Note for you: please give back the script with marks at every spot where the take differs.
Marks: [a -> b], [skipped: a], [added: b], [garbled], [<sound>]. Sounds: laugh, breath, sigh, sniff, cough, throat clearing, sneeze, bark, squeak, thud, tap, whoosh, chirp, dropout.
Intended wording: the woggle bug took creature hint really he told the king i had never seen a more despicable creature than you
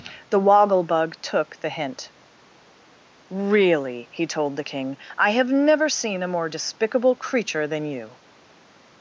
the woggle bug took [creature -> the] hint really he told the king i [had -> have] never seen a more despicable creature than you